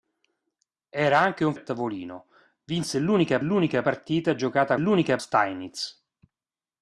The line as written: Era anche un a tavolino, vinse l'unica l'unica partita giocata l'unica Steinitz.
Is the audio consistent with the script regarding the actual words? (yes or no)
yes